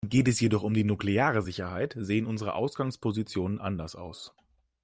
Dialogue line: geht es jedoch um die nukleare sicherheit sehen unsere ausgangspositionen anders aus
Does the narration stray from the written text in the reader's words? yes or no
no